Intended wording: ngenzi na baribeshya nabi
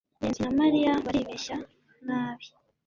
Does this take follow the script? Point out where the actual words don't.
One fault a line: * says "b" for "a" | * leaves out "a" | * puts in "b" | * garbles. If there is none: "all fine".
* puts in "mariya"